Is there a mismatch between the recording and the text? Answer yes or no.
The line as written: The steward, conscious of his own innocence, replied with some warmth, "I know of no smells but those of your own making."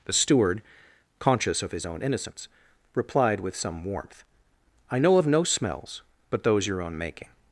yes